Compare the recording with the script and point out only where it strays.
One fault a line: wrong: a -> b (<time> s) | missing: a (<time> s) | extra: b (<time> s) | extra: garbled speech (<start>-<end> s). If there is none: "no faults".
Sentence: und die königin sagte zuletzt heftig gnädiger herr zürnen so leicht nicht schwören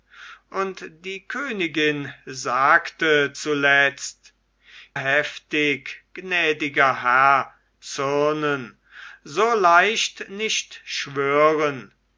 no faults